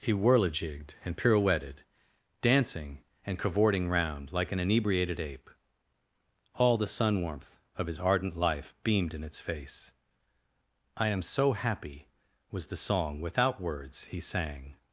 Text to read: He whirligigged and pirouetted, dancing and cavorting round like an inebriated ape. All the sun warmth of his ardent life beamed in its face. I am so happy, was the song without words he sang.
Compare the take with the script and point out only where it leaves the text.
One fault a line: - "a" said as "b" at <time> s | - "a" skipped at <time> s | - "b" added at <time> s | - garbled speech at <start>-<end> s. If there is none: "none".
none